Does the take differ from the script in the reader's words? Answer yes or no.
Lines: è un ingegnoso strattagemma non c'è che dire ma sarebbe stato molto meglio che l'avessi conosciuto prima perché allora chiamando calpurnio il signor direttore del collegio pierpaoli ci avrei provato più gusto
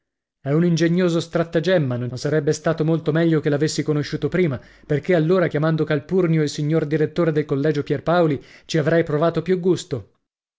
yes